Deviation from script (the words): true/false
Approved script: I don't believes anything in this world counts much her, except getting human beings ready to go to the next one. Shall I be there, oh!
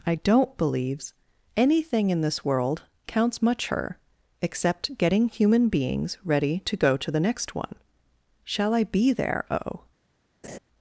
false